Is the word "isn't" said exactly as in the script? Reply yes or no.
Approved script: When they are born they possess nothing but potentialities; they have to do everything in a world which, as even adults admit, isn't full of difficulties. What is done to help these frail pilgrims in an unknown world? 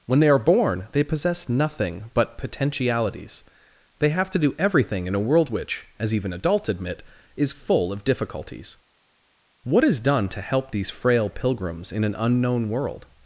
no